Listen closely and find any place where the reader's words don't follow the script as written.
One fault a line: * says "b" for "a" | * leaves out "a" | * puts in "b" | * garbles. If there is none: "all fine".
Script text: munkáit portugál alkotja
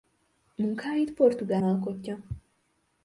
all fine